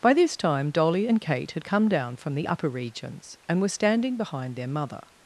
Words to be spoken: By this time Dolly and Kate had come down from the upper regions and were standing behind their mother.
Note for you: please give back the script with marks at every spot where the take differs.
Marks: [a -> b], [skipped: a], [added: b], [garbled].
By this time Dolly and Kate had come down from the upper regions and were standing behind their mother.